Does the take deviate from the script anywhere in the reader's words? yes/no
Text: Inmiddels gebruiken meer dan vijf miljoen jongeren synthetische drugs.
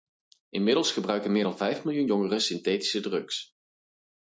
no